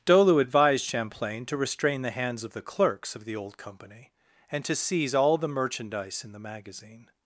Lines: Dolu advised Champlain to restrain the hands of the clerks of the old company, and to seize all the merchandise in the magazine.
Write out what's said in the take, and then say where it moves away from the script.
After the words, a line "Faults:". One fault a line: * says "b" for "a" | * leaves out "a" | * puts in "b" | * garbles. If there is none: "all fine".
Dolu advised Champlain to restrain the hands of the clerks of the old company, and to seize all the merchandise in the magazine.
Faults:
all fine